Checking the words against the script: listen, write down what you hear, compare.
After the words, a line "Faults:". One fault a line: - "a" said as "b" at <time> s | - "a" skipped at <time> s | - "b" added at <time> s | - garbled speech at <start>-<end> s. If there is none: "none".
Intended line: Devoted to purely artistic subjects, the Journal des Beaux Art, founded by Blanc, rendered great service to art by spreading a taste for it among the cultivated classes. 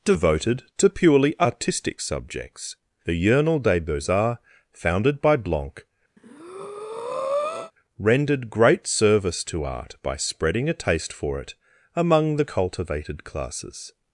Devoted to purely artistic subjects, the Journal des Beaux Arts, founded by Blanc, rendered great service to art by spreading a taste for it among the cultivated classes.
Faults:
- "Art" said as "Arts" at 4.1 s